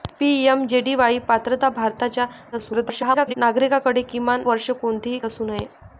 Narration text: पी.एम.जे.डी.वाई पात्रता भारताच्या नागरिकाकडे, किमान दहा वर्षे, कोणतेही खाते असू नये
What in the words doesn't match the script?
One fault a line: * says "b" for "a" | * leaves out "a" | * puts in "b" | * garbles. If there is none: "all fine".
* garbles
* leaves out "दहा"
* leaves out "खाते"